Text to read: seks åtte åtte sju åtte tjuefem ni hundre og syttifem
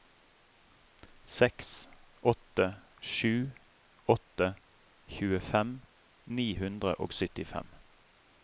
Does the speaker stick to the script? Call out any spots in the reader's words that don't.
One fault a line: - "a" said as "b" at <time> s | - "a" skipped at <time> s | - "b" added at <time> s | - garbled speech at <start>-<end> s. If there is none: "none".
- "åtte" skipped at 2.7 s